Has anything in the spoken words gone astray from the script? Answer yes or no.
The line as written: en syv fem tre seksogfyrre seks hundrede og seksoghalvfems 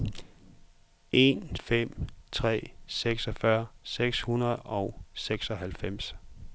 yes